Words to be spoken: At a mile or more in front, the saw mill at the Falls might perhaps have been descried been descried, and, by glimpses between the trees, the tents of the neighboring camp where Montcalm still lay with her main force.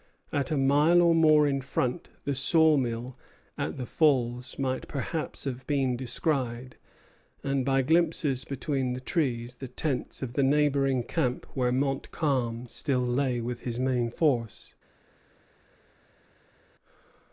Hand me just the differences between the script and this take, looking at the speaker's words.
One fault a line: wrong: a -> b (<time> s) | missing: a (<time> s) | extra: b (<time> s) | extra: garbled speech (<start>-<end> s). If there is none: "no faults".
missing: been descried (6.8 s)
wrong: her -> his (13.6 s)